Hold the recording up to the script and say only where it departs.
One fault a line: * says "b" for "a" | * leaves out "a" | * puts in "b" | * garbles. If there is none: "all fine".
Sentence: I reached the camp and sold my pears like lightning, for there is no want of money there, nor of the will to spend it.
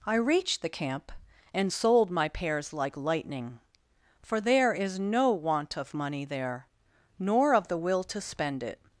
all fine